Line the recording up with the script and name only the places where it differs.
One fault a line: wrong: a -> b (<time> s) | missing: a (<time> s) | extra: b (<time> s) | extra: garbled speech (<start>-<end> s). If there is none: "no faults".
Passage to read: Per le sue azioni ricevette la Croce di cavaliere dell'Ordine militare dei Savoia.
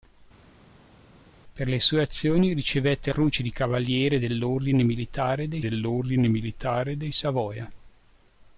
missing: la (3.1 s)
extra: dell'Ordine militare dei (5.6 s)